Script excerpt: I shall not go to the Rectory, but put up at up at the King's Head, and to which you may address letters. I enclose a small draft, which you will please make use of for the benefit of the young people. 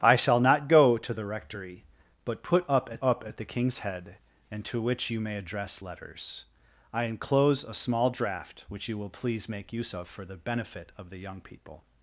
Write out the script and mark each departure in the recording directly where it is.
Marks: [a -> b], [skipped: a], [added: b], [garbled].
I shall not go to the Rectory, but put up at up at the King's Head, and to which you may address letters. I enclose a small draft, which you will please make use of for the benefit of the young people.